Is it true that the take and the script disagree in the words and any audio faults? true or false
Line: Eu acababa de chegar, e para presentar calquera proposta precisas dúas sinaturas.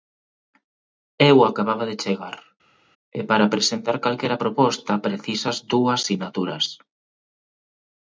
false